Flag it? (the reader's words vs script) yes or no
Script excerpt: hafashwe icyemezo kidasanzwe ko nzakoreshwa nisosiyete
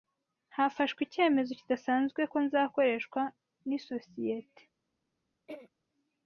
no